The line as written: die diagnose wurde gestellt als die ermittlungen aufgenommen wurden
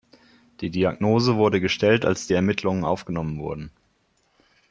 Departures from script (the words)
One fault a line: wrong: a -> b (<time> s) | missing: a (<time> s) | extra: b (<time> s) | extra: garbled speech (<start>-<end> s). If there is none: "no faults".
no faults